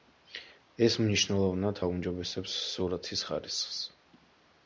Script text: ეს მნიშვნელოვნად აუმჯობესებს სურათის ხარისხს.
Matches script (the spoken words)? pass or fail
pass